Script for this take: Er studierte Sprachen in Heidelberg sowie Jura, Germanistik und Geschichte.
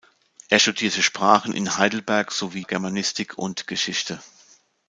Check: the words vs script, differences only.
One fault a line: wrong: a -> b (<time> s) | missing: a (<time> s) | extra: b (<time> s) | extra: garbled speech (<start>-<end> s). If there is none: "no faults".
missing: Jura (2.6 s)